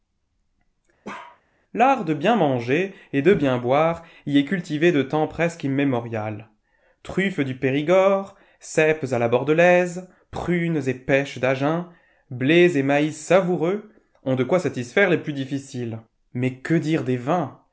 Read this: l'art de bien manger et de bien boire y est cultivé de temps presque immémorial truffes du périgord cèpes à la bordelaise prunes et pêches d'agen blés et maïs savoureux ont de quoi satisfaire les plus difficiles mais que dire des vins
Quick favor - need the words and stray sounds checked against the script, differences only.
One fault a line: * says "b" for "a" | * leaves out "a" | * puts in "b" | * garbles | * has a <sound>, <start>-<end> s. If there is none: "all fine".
* has a bark, 1.0-1.4 s